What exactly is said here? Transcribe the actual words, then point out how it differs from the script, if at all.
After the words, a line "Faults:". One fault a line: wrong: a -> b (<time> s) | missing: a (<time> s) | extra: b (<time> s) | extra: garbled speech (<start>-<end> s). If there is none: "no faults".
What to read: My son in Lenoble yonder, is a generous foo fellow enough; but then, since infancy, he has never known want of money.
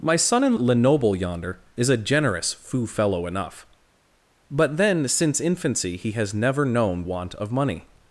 My son in Lenoble yonder, is a generous foo fellow enough; but then, since infancy, he has never known want of money.
Faults:
no faults